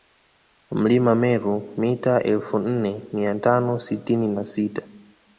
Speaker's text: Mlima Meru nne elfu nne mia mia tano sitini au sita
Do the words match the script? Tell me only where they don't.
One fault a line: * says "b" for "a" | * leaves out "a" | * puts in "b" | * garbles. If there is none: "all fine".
* says "mita" for "nne"
* leaves out "mia"
* says "na" for "au"